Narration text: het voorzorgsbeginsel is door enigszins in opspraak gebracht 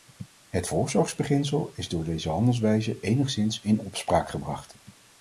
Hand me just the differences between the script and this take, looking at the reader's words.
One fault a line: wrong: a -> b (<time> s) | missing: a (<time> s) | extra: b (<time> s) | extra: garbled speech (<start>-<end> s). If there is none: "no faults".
extra: deze handelwijze (2.0 s)